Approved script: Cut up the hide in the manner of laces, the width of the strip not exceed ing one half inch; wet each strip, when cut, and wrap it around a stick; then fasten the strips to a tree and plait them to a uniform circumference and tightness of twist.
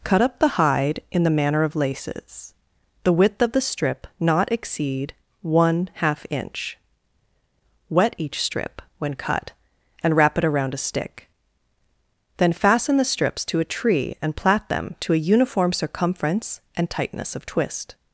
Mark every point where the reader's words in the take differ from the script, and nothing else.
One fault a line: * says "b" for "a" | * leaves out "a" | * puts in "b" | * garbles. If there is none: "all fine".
* leaves out "ing"